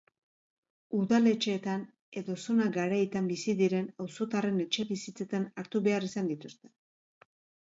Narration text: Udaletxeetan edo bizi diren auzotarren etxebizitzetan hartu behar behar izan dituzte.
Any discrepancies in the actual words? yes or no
yes